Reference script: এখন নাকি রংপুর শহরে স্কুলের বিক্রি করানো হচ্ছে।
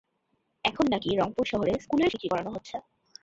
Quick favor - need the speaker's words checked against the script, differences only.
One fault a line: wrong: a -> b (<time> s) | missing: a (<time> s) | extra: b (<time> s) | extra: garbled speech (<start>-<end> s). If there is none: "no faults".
no faults